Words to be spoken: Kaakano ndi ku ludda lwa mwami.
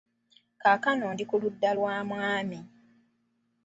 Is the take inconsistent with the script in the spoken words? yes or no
no